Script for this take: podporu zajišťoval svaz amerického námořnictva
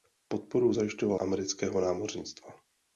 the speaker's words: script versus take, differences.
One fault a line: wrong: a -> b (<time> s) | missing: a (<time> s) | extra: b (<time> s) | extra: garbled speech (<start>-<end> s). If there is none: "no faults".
missing: svaz (1.2 s)